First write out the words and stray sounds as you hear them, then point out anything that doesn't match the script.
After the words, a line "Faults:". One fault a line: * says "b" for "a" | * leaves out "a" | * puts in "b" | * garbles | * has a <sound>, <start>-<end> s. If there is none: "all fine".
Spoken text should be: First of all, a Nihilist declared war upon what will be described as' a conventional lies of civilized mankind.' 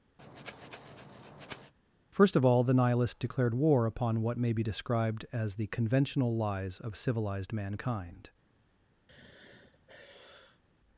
First of all, the Nihilist declared war upon what may be described as' the conventional lies of civilized mankind.'
Faults:
* has a breath, 0.2-1.7 s
* says "the" for "a"
* says "may" for "will"
* says "the" for "a"
* has a sigh, 9.1-10.6 s